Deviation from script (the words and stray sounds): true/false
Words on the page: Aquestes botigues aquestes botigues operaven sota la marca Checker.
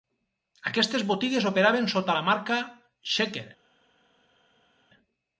true